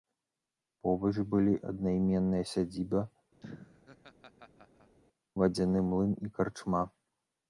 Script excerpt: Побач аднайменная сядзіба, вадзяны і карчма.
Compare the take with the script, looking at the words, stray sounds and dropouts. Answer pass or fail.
fail